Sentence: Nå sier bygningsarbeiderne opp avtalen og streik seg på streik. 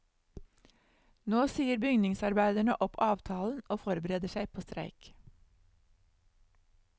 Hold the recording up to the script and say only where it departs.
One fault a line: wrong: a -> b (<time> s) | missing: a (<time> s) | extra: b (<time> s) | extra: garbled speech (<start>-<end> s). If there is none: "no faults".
wrong: streik -> forbereder (3.8 s)